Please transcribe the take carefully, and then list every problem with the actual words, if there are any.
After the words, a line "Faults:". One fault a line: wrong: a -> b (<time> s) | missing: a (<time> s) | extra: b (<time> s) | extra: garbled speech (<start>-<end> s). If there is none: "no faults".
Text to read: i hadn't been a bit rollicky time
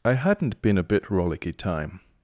i hadn't been a bit rollicky time
Faults:
no faults